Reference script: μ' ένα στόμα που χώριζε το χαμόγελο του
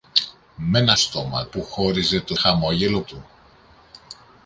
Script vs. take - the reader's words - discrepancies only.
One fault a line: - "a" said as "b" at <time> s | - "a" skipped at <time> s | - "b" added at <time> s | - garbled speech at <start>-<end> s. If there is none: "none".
none